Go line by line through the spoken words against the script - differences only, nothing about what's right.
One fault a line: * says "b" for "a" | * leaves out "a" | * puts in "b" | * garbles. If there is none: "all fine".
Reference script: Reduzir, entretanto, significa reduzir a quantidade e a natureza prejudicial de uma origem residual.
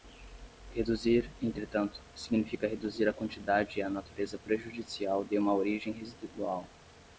all fine